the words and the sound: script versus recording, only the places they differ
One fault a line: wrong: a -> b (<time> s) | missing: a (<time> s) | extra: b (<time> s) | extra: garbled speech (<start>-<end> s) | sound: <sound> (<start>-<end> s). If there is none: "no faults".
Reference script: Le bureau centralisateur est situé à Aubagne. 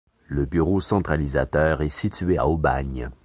no faults